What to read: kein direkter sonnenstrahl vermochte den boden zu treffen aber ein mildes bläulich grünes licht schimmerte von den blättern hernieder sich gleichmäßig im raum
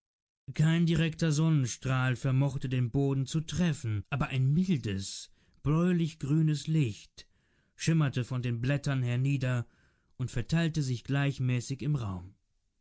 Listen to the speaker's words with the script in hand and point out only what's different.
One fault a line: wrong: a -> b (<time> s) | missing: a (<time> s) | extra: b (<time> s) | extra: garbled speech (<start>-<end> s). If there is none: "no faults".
extra: und verteilte (10.2 s)